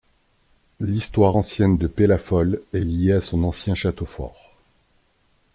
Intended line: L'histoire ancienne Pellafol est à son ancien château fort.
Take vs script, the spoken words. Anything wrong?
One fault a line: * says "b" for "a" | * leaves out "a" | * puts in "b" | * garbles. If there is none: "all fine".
* puts in "de"
* puts in "liée"